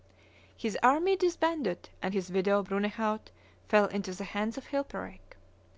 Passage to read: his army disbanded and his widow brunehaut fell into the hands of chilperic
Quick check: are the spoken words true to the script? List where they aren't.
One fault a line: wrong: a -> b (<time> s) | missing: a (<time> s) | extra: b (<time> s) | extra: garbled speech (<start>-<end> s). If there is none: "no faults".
no faults